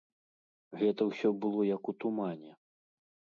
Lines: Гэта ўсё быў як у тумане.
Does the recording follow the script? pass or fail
fail